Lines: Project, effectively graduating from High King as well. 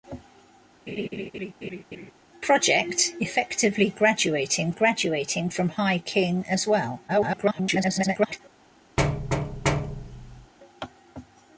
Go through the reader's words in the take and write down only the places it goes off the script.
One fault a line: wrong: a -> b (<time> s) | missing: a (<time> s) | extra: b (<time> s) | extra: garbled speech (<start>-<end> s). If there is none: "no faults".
extra: graduating (4.7 s)
extra: garbled speech (7.1-8.4 s)